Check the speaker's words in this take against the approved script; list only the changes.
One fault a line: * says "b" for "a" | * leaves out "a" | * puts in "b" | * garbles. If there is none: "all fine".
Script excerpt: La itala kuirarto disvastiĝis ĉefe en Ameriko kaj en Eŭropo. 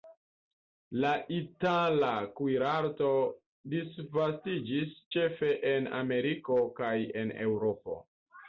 all fine